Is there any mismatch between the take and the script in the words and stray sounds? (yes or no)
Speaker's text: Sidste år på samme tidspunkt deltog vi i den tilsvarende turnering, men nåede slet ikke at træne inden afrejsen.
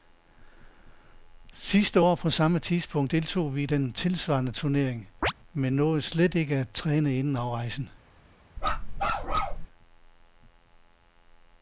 yes